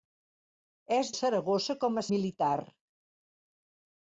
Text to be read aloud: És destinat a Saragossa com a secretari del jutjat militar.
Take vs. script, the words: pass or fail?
fail